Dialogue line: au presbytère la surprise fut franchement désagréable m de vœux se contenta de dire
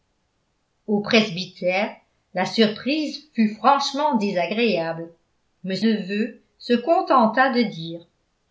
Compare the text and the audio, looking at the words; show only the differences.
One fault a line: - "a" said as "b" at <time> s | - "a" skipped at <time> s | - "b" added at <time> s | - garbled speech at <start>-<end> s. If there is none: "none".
none